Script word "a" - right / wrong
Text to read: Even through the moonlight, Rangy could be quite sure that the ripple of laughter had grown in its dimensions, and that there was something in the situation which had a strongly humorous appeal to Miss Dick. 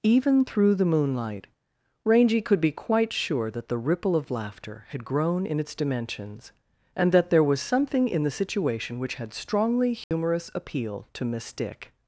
wrong